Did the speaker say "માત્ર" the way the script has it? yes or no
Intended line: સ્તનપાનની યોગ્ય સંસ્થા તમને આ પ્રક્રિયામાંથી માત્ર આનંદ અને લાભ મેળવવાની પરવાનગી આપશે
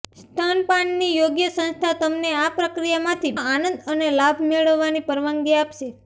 no